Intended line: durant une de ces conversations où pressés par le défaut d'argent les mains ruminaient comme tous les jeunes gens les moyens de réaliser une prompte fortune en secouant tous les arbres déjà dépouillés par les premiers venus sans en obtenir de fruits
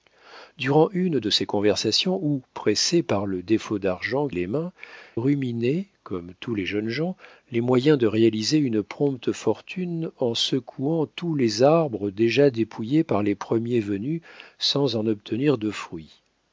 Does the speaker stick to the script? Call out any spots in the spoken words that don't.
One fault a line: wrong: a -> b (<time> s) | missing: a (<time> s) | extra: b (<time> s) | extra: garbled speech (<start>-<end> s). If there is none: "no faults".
no faults